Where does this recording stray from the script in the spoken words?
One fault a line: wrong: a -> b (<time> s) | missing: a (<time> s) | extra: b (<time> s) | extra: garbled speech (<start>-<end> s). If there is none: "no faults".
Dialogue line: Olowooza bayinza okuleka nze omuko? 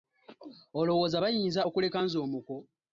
no faults